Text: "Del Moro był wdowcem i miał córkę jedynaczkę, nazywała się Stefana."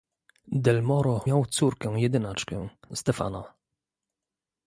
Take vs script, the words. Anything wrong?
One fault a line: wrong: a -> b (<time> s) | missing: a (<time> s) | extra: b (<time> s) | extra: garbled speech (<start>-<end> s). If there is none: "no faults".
missing: był wdowcem i (1.2 s)
missing: nazywała się (2.7 s)